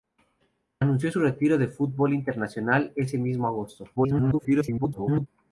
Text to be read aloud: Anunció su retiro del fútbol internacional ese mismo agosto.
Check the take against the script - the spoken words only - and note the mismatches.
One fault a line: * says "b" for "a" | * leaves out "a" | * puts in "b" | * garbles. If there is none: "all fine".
* garbles